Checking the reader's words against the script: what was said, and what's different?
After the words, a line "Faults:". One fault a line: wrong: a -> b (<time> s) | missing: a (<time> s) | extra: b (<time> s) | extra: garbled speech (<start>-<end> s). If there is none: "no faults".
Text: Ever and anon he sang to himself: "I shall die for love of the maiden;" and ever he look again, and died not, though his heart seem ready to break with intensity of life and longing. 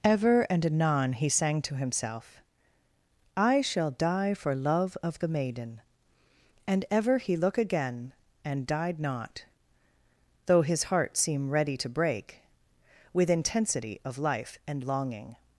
Ever and anon he sang to himself: "I shall die for love of the maiden;" and ever he look again, and died not, though his heart seem ready to break with intensity of life and longing.
Faults:
no faults